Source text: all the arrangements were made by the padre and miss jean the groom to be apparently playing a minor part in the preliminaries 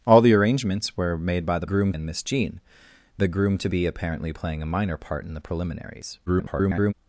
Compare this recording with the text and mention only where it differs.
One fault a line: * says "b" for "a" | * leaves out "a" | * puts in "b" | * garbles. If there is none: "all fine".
* says "groom" for "padre"
* garbles